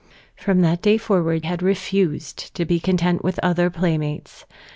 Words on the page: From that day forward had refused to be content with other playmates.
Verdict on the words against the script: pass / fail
pass